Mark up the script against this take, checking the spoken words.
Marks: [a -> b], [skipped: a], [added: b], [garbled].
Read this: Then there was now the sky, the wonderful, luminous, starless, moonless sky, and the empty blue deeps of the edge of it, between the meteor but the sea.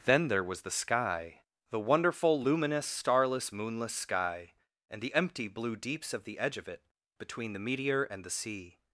Then there was [skipped: now] the sky, the wonderful, luminous, starless, moonless sky, and the empty blue deeps of the edge of it, between the meteor [but -> and] the sea.